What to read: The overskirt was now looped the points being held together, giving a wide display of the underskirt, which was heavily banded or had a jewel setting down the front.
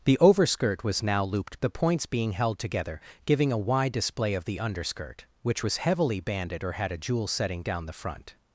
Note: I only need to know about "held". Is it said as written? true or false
true